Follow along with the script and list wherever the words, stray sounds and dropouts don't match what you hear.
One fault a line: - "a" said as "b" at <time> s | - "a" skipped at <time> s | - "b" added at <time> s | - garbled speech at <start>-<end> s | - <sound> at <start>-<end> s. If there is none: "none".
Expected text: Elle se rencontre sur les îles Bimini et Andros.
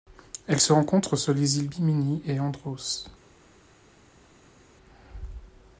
none